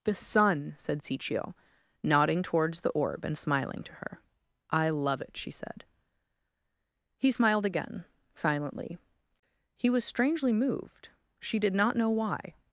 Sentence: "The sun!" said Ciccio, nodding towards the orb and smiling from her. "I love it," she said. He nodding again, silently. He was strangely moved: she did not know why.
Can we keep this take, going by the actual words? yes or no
no